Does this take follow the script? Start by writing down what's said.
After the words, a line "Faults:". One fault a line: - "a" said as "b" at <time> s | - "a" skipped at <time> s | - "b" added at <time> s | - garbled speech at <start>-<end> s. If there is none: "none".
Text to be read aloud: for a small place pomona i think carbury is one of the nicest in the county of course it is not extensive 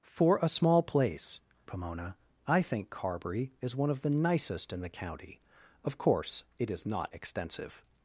for a small place pomona i think carbury is one of the nicest in the county of course it is not extensive
Faults:
none